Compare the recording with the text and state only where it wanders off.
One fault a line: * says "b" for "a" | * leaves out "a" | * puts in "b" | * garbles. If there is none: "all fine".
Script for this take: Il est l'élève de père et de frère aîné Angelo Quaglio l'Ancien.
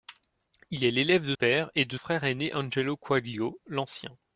all fine